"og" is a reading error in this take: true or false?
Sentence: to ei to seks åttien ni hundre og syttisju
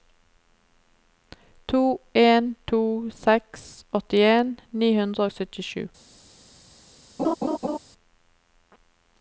false